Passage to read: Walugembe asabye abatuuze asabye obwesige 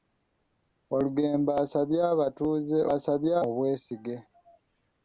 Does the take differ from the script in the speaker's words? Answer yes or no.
no